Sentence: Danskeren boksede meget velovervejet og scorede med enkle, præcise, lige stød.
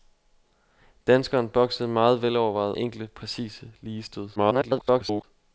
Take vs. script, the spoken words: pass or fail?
fail